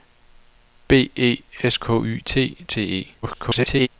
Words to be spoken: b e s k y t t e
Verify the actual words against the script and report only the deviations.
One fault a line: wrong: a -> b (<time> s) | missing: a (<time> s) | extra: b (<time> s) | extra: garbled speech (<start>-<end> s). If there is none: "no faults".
extra: garbled speech (3.2-3.9 s)